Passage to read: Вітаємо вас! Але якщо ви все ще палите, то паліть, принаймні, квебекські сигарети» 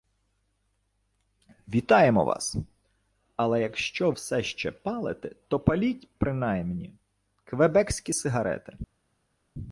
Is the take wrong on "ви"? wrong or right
wrong